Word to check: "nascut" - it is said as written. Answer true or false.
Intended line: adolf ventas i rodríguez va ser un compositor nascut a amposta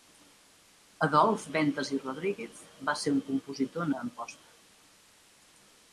false